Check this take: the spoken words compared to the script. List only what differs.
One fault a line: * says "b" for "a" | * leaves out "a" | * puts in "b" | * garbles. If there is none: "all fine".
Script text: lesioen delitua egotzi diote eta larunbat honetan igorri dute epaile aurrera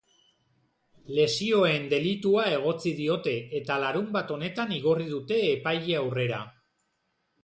all fine